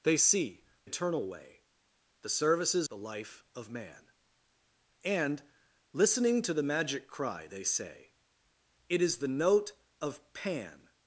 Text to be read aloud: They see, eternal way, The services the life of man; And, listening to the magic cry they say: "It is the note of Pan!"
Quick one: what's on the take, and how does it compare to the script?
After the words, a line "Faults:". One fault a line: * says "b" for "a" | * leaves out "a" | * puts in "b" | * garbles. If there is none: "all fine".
They see, eternal way, The services the life of man; And, listening to the magic cry they say: "It is the note of Pan!"
Faults:
all fine